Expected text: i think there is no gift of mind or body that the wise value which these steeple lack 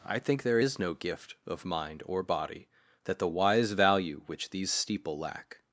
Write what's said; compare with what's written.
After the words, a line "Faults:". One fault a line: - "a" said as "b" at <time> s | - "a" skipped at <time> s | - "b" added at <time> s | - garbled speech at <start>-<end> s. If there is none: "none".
i think there is no gift of mind or body that the wise value which these steeple lack
Faults:
none